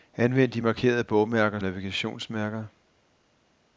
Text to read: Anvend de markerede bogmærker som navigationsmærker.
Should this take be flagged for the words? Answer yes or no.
yes